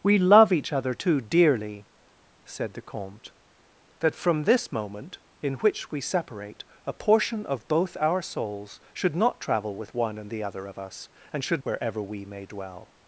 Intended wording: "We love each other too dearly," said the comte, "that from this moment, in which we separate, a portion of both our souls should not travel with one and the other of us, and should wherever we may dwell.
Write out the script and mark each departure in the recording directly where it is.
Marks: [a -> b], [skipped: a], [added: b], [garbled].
"We love each other too dearly," said the comte, "that from this moment, in which we separate, a portion of both our souls should not travel with one and the other of us, and should wherever we may dwell.